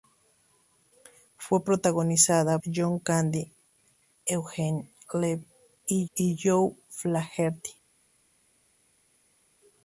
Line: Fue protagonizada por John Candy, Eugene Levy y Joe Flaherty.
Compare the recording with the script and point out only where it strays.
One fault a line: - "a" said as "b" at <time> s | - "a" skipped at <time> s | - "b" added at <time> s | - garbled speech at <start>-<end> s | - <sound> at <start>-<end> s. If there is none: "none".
- "por" skipped at 2.6 s
- "y" added at 6.1 s